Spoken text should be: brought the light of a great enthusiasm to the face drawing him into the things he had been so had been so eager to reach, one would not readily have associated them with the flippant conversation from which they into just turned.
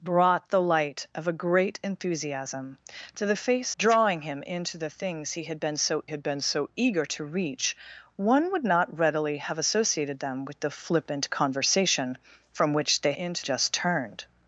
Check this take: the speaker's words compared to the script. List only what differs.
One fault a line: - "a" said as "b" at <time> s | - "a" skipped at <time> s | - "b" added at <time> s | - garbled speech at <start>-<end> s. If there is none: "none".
none